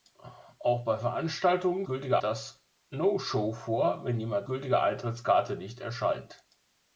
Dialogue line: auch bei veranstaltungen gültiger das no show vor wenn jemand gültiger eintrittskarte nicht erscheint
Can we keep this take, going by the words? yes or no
yes